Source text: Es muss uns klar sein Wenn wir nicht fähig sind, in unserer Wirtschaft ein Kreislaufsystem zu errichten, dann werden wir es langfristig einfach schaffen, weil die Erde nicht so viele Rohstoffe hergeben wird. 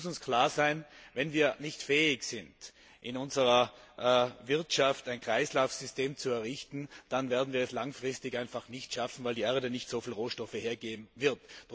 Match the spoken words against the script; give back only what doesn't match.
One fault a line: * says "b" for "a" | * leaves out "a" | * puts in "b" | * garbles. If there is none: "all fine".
* puts in "nicht"